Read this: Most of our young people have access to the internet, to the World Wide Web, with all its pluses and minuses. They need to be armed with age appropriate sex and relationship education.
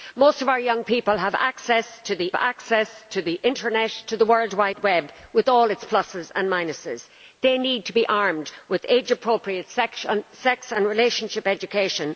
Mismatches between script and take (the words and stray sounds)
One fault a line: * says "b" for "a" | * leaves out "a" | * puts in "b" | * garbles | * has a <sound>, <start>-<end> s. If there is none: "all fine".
* puts in "access to the"